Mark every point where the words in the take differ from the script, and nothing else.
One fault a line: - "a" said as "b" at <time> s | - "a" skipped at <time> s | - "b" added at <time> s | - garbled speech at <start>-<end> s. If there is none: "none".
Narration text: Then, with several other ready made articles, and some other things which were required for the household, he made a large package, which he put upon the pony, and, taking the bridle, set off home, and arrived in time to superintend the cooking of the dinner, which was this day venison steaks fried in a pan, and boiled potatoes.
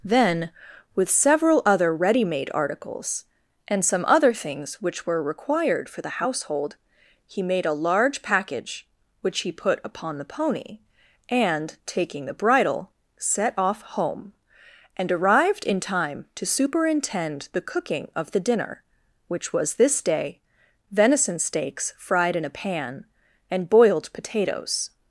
none